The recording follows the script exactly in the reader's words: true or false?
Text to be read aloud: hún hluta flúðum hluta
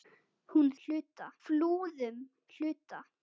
true